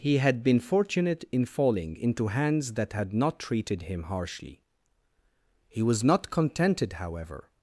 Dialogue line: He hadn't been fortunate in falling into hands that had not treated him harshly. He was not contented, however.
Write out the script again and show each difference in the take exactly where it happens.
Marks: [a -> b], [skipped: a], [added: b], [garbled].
He [hadn't -> had] been fortunate in falling into hands that had not treated him harshly. He was not contented, however.